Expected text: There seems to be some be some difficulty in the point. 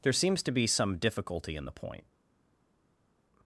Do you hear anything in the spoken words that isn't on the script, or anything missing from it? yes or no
yes